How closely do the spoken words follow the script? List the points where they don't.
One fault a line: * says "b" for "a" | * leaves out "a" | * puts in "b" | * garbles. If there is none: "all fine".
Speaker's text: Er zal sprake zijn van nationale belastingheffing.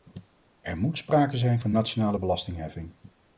* says "moet" for "zal"